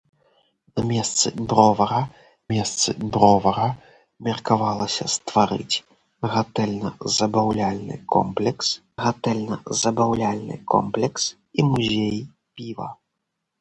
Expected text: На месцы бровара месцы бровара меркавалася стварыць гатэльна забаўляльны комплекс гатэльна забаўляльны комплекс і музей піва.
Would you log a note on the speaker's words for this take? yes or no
no